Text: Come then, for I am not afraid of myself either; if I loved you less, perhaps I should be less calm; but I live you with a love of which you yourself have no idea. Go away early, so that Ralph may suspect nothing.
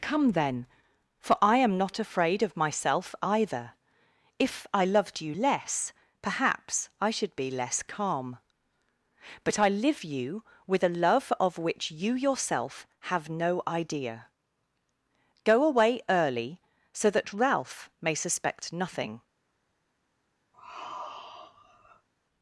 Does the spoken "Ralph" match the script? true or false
true